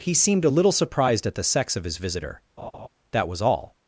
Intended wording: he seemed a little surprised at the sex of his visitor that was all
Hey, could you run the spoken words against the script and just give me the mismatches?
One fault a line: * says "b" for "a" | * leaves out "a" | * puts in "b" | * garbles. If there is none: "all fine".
all fine